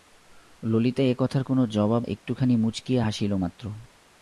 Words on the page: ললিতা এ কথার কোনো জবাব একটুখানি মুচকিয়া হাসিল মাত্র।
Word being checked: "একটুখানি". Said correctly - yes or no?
yes